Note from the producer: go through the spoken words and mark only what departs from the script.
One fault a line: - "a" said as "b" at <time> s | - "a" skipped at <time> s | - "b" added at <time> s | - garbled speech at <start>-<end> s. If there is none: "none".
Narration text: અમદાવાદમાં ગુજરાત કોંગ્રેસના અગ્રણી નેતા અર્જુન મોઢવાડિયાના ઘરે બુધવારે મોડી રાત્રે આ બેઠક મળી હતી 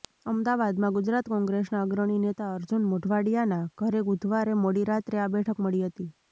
none